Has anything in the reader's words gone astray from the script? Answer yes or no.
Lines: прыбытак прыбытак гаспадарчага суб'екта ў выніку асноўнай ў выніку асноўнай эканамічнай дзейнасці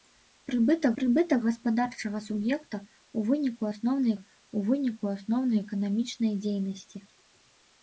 no